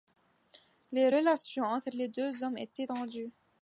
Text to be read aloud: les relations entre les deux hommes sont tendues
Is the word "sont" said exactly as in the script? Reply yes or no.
no